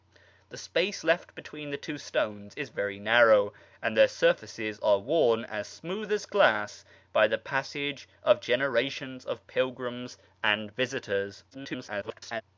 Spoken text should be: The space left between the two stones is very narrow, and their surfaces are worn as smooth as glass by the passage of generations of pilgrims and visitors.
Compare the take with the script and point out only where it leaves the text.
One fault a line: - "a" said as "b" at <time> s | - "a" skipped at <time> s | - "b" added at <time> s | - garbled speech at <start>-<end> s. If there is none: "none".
- garbled speech at 11.5-12.4 s